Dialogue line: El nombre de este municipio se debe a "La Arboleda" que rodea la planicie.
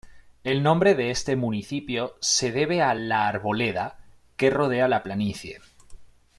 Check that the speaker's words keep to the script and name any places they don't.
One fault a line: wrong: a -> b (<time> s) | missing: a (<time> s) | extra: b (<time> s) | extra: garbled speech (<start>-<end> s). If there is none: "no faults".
no faults